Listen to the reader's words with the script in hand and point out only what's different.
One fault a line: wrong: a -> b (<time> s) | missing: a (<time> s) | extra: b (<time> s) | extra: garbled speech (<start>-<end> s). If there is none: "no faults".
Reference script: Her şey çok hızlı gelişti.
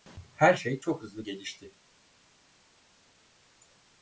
no faults